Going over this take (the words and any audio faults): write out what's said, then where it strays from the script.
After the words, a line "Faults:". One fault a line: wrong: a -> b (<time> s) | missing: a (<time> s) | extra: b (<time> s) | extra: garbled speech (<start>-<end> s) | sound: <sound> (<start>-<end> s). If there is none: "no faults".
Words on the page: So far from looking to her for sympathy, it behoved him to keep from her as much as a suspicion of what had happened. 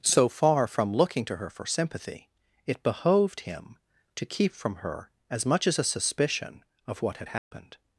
So far from looking to her for sympathy, it behoved him to keep from her as much as a suspicion of what had happened.
Faults:
sound: dropout (7.4-7.5 s)